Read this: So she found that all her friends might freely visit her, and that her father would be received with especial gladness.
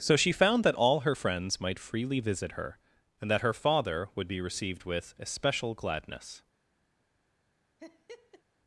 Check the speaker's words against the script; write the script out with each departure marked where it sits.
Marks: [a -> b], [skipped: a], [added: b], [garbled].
So she found that all her friends might freely visit her, and that her father would be received with especial gladness.